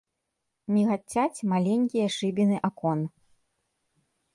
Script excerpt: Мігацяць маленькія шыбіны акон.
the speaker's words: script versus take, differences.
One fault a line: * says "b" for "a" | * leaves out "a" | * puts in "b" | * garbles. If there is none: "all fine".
all fine